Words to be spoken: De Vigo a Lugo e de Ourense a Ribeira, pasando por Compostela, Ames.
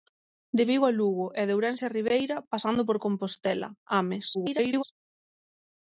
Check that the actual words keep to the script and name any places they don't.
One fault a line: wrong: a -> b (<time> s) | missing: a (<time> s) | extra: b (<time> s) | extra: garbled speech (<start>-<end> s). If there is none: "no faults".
extra: garbled speech (4.3-4.8 s)